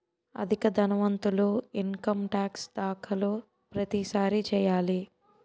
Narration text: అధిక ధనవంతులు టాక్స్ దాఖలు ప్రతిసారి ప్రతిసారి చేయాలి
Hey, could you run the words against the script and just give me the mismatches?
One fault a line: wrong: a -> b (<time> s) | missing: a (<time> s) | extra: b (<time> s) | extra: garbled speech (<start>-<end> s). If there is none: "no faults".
extra: ఇన్కమ్ (1.8 s)
missing: ప్రతిసారి (4.4 s)